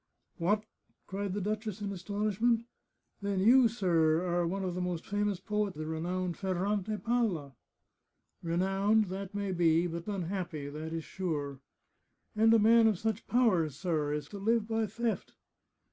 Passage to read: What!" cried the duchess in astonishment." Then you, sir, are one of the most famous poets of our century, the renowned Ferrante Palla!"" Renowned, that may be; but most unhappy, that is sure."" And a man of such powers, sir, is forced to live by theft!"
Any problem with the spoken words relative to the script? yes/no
yes